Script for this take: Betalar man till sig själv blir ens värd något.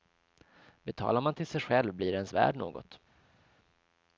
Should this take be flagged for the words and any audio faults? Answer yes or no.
no